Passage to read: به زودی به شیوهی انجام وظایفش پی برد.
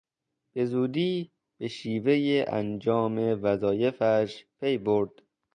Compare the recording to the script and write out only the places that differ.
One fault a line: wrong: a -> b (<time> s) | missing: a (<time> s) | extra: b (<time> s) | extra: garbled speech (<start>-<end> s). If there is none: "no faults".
no faults